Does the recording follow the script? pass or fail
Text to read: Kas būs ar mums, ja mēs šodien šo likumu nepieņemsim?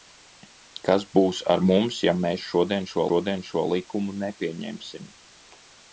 fail